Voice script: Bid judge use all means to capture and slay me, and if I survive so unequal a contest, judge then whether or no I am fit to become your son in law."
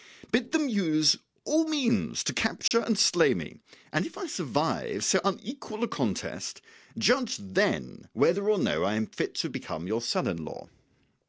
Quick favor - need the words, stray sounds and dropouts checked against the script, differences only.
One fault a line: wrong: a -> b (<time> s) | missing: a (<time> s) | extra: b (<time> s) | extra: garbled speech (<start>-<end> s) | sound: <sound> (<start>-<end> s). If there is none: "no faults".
wrong: judge -> them (0.5 s)
sound: dropout (2.7-2.7 s)